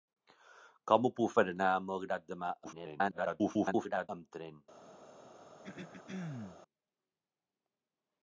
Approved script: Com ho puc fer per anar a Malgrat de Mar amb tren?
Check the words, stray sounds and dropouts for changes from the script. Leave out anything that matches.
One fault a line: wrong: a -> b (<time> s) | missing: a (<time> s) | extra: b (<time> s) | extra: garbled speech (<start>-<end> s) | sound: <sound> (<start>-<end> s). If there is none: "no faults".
missing: fer (1.4 s)
extra: garbled speech (2.6-4.1 s)
sound: throat clearing (5.6-6.6 s)